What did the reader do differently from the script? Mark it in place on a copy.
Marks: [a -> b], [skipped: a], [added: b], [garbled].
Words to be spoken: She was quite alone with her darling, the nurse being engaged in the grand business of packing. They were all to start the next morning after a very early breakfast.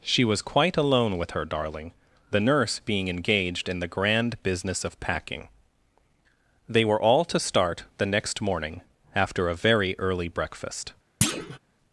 She was quite alone with her darling, the nurse being engaged in the grand business of packing. They were all to start the next morning after a very early breakfast.